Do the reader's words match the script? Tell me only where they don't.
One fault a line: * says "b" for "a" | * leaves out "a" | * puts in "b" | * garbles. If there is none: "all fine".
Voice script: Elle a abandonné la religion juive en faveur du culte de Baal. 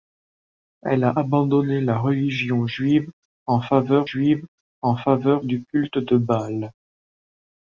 * puts in "juive en faveur"